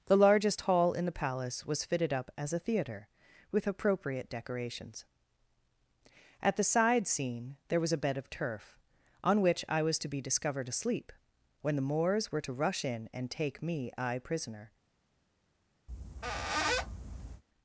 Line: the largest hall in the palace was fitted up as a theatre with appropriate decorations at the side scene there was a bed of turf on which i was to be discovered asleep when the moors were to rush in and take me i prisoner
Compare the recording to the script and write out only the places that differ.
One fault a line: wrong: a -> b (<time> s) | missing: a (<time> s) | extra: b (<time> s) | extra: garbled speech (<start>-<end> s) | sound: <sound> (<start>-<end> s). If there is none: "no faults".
sound: squeak (15.9-17.4 s)